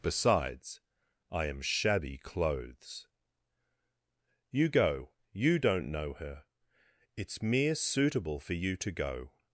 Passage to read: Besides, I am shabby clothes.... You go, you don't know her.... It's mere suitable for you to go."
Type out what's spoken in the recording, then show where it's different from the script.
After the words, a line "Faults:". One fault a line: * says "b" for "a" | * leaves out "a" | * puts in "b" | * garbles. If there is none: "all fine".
Besides, I am shabby clothes.... You go, you don't know her.... It's mere suitable for you to go."
Faults:
all fine